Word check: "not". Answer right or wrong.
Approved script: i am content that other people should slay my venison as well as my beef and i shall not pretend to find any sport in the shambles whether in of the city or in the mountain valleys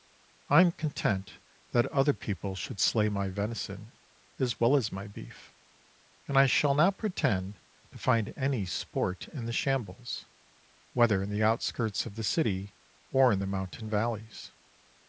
right